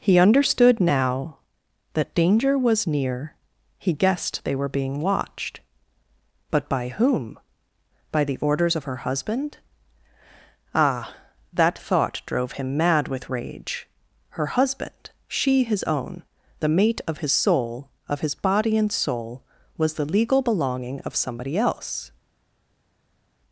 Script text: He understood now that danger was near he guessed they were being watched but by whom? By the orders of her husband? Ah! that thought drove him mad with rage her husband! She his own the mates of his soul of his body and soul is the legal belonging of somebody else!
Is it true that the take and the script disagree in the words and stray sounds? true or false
true